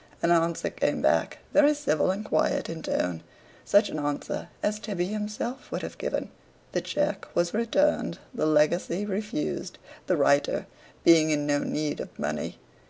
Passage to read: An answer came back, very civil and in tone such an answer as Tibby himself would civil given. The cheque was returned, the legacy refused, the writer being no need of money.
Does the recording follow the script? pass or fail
fail